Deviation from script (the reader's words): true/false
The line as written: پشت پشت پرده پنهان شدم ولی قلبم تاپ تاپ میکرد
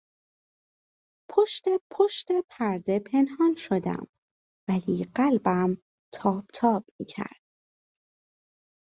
false